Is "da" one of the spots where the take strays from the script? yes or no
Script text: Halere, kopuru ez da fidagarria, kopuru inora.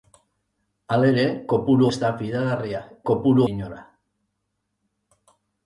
no